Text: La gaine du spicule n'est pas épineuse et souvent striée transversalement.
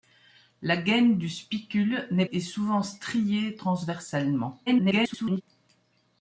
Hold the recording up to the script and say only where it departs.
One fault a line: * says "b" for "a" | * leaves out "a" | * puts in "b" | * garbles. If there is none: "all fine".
* leaves out "pas épineuse"
* garbles